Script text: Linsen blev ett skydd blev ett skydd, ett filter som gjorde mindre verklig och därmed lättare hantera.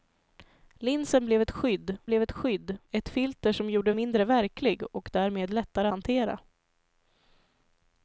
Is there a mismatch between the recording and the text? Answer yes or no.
no